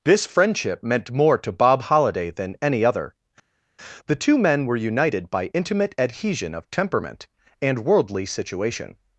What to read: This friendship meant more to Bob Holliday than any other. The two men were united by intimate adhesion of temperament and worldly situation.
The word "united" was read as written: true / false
true